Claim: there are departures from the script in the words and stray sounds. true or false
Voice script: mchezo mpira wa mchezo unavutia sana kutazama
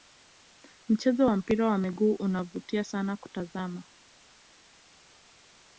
true